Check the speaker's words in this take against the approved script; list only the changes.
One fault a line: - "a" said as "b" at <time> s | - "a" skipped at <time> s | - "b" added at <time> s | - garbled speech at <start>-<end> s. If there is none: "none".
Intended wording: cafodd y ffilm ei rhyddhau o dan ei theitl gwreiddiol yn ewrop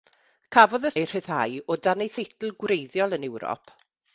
- "ffilm" skipped at 0.9 s